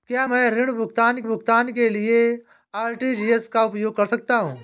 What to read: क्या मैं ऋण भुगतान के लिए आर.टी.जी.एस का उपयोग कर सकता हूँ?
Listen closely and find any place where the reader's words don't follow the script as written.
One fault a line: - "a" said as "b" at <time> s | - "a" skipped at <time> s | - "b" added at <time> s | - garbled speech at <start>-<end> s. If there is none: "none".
- "भुगतान" added at 1.2 s